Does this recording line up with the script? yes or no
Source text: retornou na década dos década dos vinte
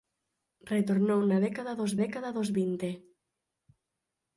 yes